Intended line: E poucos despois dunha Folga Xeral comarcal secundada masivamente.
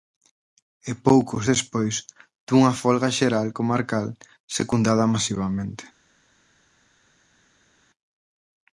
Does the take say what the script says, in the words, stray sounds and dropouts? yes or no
yes